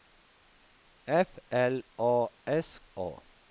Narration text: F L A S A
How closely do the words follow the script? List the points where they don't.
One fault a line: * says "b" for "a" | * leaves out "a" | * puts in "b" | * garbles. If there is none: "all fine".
all fine